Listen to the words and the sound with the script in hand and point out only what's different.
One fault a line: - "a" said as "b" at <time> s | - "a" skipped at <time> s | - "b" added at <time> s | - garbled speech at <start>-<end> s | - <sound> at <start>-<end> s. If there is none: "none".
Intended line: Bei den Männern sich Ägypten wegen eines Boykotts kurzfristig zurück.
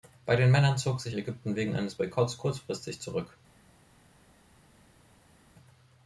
- "zog" added at 0.8 s